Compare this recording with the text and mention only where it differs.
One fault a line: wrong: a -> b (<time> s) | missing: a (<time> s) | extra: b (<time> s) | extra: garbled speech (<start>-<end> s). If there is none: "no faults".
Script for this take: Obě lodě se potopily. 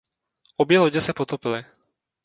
no faults